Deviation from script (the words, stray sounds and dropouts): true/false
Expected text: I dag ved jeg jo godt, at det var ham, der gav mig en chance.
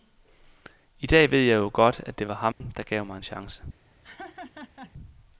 true